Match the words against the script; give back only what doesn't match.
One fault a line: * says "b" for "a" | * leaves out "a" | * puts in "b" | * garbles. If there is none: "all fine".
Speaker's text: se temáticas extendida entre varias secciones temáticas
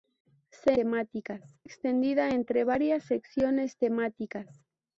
all fine